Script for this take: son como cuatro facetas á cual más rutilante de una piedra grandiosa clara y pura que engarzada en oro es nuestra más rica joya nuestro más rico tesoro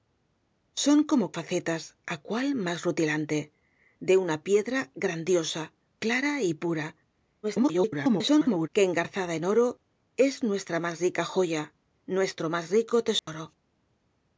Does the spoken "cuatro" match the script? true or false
false